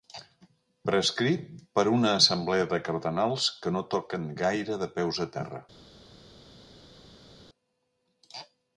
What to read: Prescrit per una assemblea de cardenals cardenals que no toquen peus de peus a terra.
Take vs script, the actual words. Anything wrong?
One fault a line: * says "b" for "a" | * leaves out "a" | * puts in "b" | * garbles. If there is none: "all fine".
* leaves out "cardenals"
* says "gaire" for "peus"